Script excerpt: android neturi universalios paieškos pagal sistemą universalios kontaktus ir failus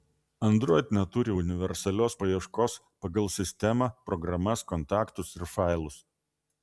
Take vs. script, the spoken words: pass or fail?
fail